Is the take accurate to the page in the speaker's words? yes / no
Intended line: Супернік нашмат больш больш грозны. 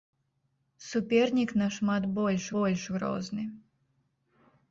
yes